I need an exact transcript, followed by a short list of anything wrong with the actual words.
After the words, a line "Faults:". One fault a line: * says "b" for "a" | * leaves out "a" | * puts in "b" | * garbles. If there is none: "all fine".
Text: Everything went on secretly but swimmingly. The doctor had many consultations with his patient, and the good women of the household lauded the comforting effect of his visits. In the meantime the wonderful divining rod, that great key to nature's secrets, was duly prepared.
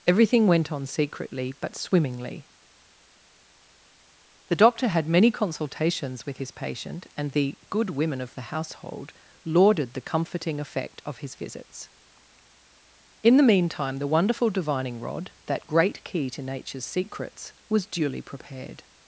Everything went on secretly but swimmingly. The doctor had many consultations with his patient, and the good women of the household lauded the comforting effect of his visits. In the meantime the wonderful divining rod, that great key to nature's secrets, was duly prepared.
Faults:
all fine